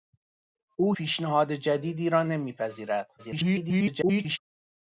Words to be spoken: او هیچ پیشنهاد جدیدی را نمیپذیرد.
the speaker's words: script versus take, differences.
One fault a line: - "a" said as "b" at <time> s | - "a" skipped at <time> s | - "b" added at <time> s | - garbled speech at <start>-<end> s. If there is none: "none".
- "هیچ" skipped at 0.9 s
- garbled speech at 3.2-4.4 s